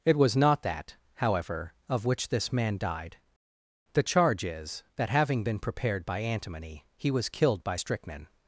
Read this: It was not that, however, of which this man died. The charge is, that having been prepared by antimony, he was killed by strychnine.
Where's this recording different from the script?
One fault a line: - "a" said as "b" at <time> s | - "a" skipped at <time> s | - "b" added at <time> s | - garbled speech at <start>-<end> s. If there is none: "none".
none